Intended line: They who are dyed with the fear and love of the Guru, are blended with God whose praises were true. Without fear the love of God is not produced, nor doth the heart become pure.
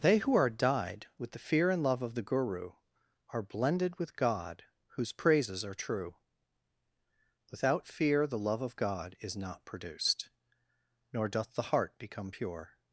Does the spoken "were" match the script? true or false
false